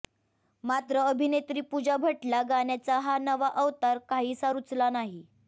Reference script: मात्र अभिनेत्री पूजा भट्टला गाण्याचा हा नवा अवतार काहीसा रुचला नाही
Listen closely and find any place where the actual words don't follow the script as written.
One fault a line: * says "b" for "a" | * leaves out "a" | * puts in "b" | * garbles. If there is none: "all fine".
all fine